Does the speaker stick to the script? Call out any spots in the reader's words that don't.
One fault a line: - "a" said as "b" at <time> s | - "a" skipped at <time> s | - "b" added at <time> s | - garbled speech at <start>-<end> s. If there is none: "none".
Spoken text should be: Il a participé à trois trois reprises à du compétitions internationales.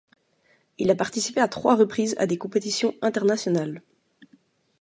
- "trois" skipped at 1.8 s
- "du" said as "des" at 2.2 s